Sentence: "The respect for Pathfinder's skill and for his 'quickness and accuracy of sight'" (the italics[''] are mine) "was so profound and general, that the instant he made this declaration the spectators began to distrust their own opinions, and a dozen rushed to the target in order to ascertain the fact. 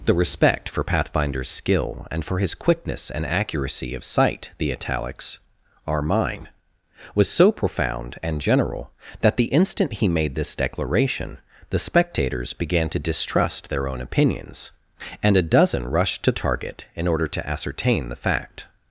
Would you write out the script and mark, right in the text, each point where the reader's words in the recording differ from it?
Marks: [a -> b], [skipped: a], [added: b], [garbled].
"The respect for Pathfinder's skill and for his 'quickness and accuracy of sight'" (the italics[''] are mine) "was so profound and general, that the instant he made this declaration the spectators began to distrust their own opinions, and a dozen rushed to [skipped: the] target in order to ascertain the fact.